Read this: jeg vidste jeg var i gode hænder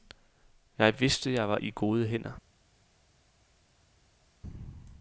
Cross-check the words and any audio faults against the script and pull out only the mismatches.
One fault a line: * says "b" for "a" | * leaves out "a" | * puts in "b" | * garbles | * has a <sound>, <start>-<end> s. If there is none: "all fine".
all fine